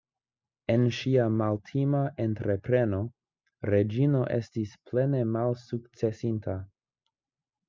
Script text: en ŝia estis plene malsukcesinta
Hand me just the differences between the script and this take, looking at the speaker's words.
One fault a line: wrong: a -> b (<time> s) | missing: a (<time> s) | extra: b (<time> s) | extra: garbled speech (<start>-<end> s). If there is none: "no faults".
extra: maltima entrepreno reĝino (1.4 s)